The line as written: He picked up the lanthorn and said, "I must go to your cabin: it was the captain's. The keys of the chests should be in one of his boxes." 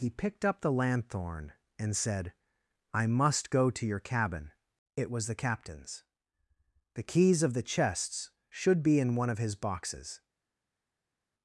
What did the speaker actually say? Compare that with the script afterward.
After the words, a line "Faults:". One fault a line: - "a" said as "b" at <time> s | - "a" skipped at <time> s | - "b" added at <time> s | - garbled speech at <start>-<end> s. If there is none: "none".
He picked up the lanthorn and said, "I must go to your cabin: it was the captain's. The keys of the chests should be in one of his boxes."
Faults:
none